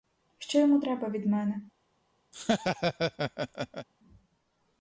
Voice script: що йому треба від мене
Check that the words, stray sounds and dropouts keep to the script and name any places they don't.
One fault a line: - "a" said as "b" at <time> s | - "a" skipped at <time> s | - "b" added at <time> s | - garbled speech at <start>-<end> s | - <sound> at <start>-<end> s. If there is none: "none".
- laugh at 2.3-3.9 s